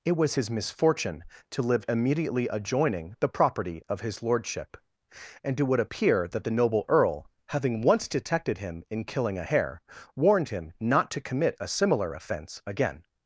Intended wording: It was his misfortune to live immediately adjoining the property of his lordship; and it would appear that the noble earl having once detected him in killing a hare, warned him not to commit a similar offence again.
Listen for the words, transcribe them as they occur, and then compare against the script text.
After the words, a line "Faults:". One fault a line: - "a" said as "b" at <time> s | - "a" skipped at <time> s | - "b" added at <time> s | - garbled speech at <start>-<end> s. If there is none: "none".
It was his misfortune to live immediately adjoining the property of his lordship; and it would appear that the noble earl having once detected him in killing a hare, warned him not to commit a similar offence again.
Faults:
none